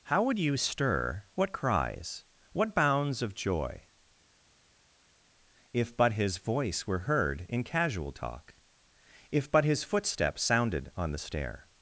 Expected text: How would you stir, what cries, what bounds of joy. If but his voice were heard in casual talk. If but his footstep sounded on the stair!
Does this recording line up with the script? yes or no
yes